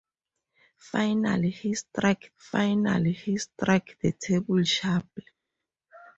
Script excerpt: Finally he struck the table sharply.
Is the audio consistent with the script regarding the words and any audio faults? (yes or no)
no